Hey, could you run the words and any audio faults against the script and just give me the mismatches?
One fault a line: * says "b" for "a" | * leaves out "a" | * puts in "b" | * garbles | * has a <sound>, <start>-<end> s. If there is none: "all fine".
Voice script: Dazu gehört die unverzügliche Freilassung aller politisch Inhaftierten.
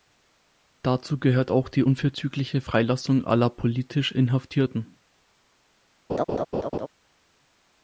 * puts in "auch"
* has a laugh, 6.1-6.9 s